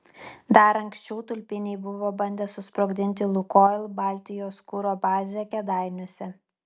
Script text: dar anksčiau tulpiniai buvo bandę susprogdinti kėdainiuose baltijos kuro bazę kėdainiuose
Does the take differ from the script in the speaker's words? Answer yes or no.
yes